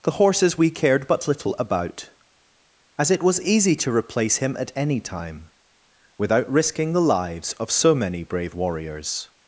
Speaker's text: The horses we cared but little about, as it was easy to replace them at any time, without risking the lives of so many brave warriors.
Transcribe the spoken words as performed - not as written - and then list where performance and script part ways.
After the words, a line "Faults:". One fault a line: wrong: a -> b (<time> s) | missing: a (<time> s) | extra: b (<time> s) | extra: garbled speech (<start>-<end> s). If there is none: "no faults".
The horses we cared but little about, as it was easy to replace him at any time, without risking the lives of so many brave warriors.
Faults:
wrong: them -> him (4.4 s)